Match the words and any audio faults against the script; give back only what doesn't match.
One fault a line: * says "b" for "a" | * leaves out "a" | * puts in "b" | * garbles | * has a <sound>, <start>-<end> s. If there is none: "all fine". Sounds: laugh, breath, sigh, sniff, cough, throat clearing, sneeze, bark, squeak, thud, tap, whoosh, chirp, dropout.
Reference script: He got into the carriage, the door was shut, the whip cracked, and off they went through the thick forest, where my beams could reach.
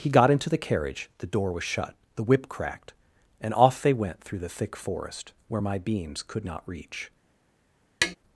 * puts in "not"
* has a tap, 8.0-8.2 s